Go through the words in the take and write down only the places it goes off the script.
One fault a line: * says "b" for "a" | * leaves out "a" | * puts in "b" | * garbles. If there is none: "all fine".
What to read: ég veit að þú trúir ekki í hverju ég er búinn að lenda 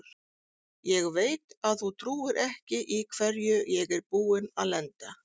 all fine